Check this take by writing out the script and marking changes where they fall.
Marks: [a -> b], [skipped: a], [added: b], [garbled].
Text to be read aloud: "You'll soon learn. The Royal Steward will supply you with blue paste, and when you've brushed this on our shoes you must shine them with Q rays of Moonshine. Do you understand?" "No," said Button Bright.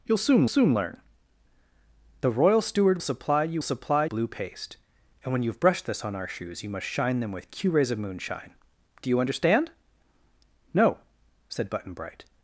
"You'll soon [added: soon] learn. The Royal Steward [skipped: will] supply you [with -> supply] blue paste, and when you've brushed this on our shoes you must shine them with Q rays of Moonshine. Do you understand?" "No," said Button Bright.